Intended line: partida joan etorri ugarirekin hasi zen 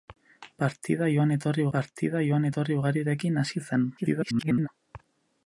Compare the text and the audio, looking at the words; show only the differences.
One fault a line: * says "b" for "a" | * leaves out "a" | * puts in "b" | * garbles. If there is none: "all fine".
* puts in "partida joan etorri"
* garbles